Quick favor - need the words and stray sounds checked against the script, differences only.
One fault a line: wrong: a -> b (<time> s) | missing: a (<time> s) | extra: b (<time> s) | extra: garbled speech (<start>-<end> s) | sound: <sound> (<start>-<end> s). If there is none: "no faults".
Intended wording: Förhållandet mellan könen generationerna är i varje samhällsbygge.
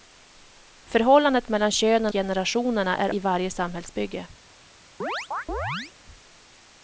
sound: chirp (5.0-5.9 s)